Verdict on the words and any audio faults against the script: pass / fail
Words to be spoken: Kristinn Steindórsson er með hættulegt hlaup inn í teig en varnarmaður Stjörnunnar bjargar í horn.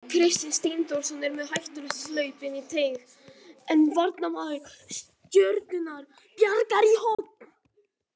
fail